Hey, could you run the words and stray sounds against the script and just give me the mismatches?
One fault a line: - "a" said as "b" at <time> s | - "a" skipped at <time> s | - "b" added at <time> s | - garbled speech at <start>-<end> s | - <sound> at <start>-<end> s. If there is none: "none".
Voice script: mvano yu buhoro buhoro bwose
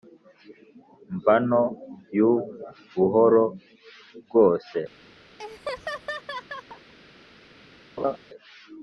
- "buhoro" skipped at 3.4 s
- laugh at 5.4-6.9 s
- laugh at 8.0-8.2 s